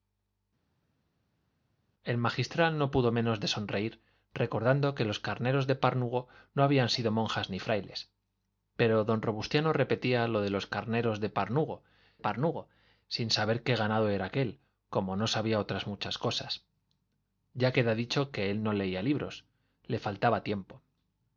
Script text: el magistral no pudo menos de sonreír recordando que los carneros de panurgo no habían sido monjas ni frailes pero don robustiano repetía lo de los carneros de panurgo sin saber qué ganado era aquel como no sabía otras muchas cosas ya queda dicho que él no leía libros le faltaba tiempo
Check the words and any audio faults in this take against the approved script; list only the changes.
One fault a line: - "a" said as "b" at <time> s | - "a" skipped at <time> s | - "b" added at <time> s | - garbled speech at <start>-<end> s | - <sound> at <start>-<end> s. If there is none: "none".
- "panurgo" added at 12.2 s